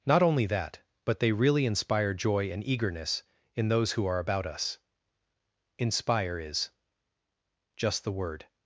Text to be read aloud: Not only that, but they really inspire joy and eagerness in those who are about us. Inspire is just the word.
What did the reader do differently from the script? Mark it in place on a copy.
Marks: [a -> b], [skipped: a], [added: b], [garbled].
Not only that, but they really inspire joy and eagerness in those who are about us. Inspire is just the word.